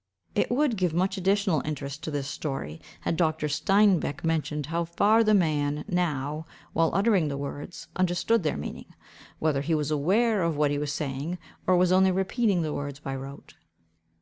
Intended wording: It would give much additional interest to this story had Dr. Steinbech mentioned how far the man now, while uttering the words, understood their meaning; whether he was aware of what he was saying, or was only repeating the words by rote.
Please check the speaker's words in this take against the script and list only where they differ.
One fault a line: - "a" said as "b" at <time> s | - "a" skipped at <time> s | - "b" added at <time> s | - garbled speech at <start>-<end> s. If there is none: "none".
none